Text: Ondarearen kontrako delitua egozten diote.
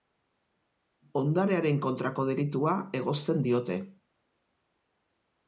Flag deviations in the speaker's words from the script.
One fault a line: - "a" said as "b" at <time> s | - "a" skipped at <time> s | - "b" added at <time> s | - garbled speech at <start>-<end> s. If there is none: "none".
none